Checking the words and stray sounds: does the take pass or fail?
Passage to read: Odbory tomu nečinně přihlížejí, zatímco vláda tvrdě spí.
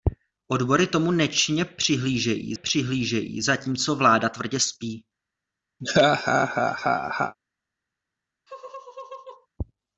fail